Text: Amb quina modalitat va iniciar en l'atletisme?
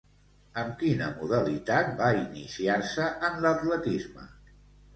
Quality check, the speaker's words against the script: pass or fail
fail